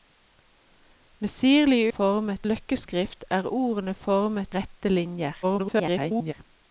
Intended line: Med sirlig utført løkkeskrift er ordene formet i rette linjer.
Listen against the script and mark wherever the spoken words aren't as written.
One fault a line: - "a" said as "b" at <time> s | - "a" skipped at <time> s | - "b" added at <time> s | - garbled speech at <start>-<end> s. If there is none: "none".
- "utført" said as "formet" at 2.0 s
- "i" skipped at 4.6 s
- garbled speech at 5.4-6.3 s